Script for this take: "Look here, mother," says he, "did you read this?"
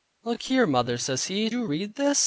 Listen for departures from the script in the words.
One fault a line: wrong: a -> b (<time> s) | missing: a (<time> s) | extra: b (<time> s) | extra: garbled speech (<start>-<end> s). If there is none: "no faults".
missing: did (1.5 s)